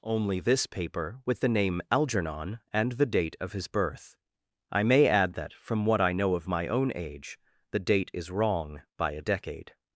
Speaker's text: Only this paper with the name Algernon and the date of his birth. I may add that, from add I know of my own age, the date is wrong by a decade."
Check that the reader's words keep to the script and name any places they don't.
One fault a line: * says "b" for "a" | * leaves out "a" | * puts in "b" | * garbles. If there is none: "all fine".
* says "what" for "add"